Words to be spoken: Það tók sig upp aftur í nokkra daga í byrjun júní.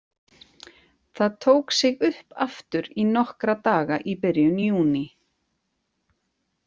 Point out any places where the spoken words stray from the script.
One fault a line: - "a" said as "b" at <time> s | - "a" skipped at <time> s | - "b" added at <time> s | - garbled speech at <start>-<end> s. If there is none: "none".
none